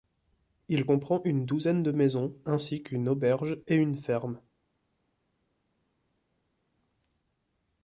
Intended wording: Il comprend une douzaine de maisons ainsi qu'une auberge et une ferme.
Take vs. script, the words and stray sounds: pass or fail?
pass